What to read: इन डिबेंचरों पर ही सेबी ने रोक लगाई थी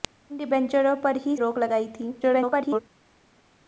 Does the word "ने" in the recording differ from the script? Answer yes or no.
yes